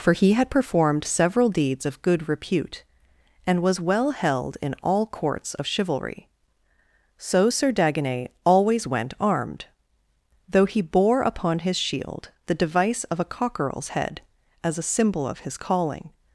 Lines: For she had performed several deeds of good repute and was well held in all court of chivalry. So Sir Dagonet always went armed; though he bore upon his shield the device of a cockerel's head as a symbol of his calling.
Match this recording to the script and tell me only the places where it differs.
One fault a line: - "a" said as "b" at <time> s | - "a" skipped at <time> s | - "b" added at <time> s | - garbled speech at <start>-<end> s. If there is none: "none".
- "she" said as "he" at 0.1 s
- "court" said as "courts" at 5.0 s